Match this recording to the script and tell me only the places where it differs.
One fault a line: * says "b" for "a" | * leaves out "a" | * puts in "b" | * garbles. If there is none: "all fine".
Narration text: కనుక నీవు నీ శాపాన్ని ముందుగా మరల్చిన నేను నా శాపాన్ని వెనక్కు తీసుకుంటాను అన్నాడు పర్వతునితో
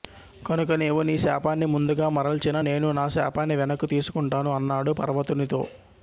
all fine